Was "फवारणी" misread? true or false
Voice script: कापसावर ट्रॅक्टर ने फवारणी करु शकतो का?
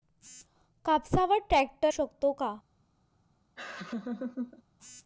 true